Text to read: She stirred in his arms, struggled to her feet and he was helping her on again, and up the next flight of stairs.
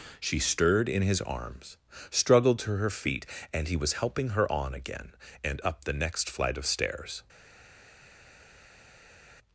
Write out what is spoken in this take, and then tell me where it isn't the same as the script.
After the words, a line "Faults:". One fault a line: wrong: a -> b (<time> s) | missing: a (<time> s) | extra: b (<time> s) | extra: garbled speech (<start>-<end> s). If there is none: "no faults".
She stirred in his arms, struggled to her feet and he was helping her on again, and up the next flight of stairs.
Faults:
no faults